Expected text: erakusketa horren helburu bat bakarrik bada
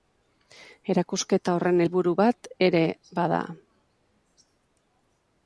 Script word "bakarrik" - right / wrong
wrong